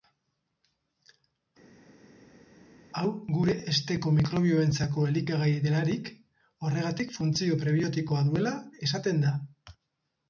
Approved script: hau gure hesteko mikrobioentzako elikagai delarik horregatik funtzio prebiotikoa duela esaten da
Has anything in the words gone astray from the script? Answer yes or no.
no